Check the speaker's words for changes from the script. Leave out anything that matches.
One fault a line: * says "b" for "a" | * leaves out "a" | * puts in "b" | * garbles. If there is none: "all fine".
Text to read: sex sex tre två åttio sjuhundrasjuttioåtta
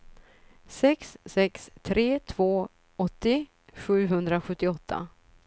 all fine